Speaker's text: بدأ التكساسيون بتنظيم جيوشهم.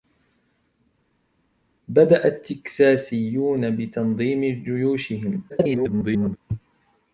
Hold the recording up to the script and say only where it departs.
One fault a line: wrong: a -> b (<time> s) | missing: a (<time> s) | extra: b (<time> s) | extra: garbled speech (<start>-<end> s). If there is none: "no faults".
extra: garbled speech (5.5-6.4 s)